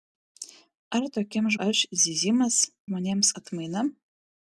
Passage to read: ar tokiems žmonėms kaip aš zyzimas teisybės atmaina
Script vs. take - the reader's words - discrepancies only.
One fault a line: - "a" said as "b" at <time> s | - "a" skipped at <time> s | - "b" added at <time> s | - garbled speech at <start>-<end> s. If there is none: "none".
- "žmonėms kaip" skipped at 1.6 s
- "teisybės" said as "žmonėms" at 2.9 s